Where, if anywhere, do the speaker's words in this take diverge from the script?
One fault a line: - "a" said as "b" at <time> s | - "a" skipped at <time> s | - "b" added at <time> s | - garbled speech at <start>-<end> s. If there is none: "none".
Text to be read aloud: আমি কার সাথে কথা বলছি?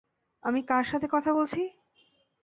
none